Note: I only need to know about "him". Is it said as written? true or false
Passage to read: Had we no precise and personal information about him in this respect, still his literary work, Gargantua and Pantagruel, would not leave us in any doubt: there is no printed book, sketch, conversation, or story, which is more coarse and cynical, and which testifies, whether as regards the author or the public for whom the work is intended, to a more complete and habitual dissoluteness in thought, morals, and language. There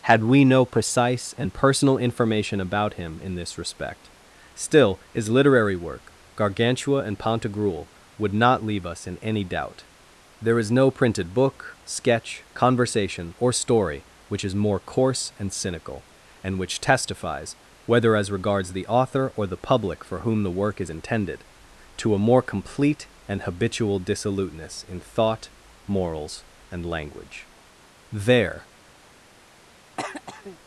true